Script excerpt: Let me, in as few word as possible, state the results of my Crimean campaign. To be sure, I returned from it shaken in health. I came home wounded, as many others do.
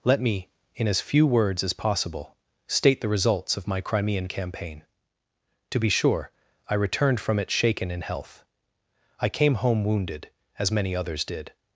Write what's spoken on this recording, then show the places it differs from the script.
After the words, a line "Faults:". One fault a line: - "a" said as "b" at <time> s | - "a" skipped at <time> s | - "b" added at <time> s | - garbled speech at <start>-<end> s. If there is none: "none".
Let me, in as few words as possible, state the results of my Crimean campaign. To be sure, I returned from it shaken in health. I came home wounded, as many others did.
Faults:
- "word" said as "words" at 1.3 s
- "do" said as "did" at 11.2 s